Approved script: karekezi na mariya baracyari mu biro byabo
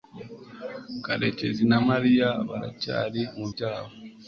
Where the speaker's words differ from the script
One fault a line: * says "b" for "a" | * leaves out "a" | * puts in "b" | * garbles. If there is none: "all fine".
* leaves out "biro"